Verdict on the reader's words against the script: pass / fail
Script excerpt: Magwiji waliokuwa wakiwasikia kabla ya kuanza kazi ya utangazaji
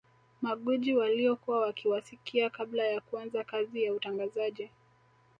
pass